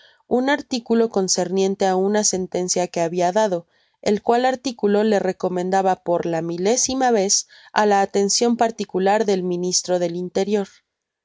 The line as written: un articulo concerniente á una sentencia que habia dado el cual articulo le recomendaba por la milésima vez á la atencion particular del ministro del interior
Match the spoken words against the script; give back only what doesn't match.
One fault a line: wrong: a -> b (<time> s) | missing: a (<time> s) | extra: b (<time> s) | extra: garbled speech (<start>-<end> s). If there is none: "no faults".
no faults